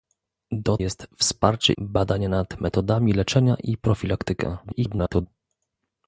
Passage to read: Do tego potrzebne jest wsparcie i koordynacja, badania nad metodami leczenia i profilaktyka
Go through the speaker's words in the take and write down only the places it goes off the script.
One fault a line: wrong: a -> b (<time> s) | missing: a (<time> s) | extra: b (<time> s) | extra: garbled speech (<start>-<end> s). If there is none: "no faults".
missing: tego potrzebne (0.8 s)
missing: i koordynacja (1.7 s)
extra: garbled speech (4.6-5.3 s)